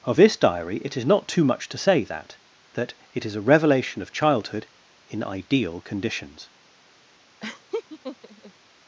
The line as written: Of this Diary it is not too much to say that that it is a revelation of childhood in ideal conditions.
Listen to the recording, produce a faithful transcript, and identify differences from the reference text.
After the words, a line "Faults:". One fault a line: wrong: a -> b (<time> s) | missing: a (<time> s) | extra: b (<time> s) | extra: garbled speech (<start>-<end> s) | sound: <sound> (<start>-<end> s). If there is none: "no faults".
Of this Diary it is not too much to say that that it is a revelation of childhood in ideal conditions.
Faults:
sound: laugh (7.4-8.5 s)